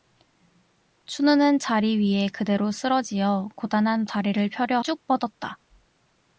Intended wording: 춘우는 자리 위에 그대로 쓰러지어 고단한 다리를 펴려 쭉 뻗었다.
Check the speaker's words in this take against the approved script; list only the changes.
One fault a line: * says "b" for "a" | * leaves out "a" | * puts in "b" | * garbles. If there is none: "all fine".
all fine